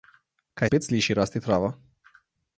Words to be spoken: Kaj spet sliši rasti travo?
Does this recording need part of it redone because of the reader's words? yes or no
no